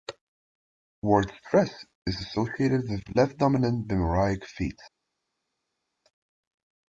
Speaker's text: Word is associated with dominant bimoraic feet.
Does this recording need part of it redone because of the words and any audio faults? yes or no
yes